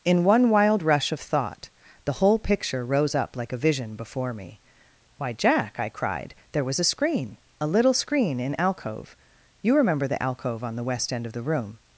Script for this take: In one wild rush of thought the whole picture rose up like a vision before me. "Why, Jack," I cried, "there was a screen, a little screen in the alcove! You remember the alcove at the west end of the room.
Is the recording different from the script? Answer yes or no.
yes